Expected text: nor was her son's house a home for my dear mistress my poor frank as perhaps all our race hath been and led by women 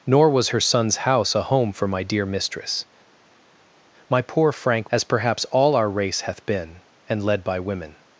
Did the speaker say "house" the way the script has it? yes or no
yes